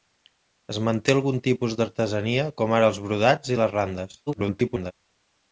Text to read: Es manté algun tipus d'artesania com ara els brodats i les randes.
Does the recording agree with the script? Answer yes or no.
no